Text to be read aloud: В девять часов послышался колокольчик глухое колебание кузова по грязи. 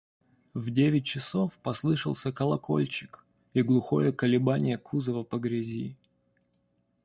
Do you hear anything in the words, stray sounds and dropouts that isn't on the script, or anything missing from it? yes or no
yes